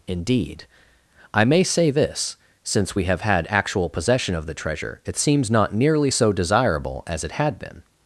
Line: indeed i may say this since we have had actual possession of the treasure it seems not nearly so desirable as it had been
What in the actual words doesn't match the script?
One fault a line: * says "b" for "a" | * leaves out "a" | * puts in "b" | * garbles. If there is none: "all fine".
all fine